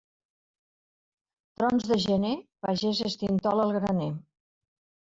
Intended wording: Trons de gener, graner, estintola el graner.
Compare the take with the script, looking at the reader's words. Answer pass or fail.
fail